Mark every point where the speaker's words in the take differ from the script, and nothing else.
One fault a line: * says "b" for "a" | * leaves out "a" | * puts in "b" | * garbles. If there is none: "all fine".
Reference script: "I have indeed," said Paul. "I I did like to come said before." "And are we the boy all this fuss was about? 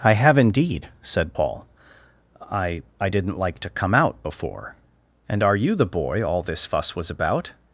* says "didn't" for "did"
* says "out" for "said"
* says "you" for "we"